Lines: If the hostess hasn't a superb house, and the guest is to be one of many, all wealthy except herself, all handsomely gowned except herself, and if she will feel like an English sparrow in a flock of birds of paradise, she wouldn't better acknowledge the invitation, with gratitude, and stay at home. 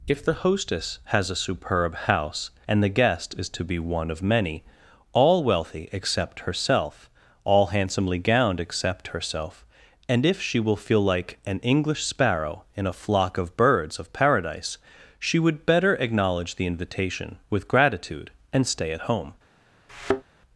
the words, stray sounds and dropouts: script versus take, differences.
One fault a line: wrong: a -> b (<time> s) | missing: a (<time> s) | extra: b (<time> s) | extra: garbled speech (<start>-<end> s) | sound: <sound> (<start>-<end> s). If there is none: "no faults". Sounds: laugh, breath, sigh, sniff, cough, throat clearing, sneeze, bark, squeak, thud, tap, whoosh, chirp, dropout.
wrong: hasn't -> has (1.1 s)
wrong: wouldn't -> would (15.4 s)
sound: thud (19.9-20.2 s)